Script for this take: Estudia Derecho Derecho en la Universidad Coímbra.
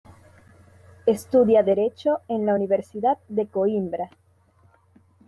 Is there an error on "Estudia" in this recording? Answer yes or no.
no